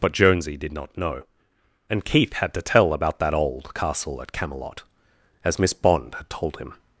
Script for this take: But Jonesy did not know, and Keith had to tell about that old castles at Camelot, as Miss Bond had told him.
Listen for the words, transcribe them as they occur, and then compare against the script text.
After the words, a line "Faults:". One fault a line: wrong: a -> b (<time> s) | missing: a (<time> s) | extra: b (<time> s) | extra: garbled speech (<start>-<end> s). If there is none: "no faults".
But Jonesy did not know, and Keith had to tell about that old castle at Camelot, as Miss Bond had told him.
Faults:
wrong: castles -> castle (3.7 s)